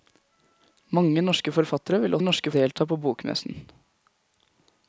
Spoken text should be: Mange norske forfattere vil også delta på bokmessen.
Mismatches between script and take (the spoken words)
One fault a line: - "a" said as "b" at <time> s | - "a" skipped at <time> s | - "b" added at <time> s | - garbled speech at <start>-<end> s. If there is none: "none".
- "også" said as "norske" at 2.2 s